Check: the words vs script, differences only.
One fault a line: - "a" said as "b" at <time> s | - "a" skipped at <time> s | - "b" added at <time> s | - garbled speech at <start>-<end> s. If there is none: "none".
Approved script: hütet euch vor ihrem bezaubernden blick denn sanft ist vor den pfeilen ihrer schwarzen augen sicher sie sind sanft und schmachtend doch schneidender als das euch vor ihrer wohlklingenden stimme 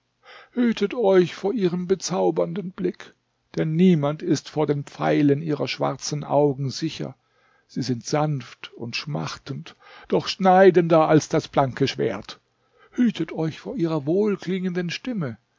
- "sanft" said as "niemand" at 3.8 s
- "blanke schwert hütet" added at 11.5 s